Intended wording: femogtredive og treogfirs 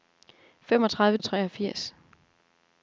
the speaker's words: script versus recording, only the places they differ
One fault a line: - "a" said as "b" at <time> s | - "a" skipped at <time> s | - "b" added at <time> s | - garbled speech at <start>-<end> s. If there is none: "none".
none